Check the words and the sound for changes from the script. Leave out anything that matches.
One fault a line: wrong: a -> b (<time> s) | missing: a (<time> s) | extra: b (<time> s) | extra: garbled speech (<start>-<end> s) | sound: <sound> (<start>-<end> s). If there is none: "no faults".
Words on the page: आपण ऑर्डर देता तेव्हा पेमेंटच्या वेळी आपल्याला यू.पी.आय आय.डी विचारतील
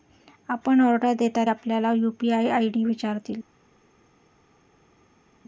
missing: तेव्हा पेमेंटच्या वेळी (1.4 s)